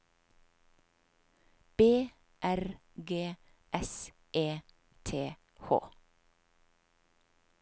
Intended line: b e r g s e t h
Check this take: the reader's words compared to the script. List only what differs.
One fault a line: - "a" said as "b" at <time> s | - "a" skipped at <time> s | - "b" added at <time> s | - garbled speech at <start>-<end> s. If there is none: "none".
- "e" skipped at 2.1 s